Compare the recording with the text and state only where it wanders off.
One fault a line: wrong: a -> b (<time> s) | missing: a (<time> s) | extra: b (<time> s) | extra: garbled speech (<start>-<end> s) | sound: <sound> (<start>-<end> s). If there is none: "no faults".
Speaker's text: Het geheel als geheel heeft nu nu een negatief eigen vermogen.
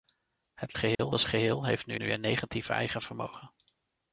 sound: dropout (0.9-1.0 s)